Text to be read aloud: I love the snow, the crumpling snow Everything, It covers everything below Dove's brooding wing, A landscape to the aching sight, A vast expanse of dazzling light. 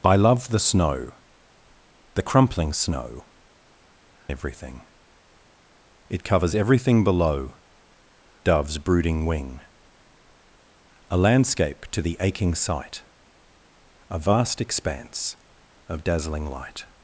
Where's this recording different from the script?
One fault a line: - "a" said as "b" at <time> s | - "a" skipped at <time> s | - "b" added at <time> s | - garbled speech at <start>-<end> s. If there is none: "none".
none